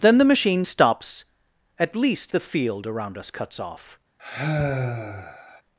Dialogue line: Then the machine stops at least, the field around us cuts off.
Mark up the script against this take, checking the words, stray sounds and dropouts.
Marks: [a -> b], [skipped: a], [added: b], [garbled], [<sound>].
Then the machine stops at least, the field around us cuts off. [sigh]